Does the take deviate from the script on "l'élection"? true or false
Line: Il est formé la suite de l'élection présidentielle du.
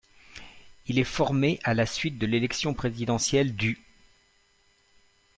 false